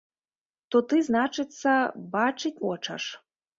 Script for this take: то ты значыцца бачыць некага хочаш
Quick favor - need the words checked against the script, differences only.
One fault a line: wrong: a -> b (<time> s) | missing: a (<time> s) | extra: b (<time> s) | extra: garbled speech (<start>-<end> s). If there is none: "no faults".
missing: некага (2.5 s)